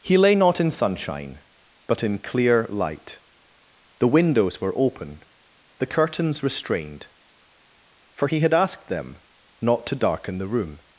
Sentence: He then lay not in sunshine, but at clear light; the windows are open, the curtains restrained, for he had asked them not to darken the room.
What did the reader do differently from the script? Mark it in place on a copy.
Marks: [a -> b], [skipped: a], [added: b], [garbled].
He [skipped: then] lay not in sunshine, but [at -> in] clear light; the windows [are -> were] open, the curtains restrained, for he had asked them not to darken the room.